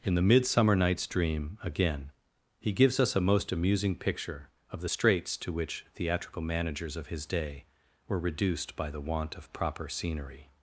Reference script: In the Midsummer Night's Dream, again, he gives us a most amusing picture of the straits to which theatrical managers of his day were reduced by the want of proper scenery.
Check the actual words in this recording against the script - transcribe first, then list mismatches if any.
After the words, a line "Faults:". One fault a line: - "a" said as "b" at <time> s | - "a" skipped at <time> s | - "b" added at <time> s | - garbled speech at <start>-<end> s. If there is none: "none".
In the Midsummer Night's Dream, again, he gives us a most amusing picture of the straits to which theatrical managers of his day were reduced by the want of proper scenery.
Faults:
none